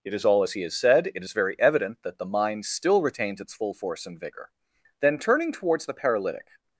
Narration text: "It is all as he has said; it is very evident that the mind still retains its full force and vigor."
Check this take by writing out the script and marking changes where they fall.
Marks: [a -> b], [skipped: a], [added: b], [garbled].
"It is all as he has said; it is very evident that the mind still retains its full force and vigor." [added: Then turning towards the paralytic]